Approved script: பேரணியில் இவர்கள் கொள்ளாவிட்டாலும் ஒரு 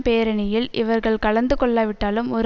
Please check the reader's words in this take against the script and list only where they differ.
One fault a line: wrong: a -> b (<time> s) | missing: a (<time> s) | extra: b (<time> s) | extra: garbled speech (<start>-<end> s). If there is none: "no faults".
extra: கலந்து (1.2 s)